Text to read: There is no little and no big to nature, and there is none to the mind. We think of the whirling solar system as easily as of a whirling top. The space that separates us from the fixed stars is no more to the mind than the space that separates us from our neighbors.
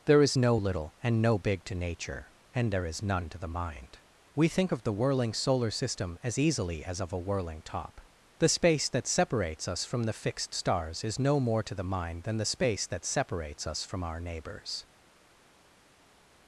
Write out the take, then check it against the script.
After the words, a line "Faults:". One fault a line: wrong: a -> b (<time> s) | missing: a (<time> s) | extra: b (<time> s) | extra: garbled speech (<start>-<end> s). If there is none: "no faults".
There is no little and no big to nature, and there is none to the mind. We think of the whirling solar system as easily as of a whirling top. The space that separates us from the fixed stars is no more to the mind than the space that separates us from our neighbors.
Faults:
no faults